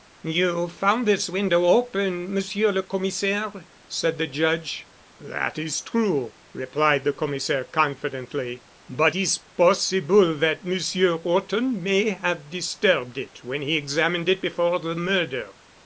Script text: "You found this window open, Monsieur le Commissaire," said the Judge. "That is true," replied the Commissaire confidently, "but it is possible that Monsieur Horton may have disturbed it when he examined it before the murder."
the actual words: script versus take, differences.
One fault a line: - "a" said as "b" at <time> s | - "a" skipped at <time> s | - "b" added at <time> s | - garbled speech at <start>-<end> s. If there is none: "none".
- "it" skipped at 9.2 s